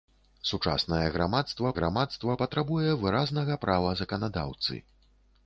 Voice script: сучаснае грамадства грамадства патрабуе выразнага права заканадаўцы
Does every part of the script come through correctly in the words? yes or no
yes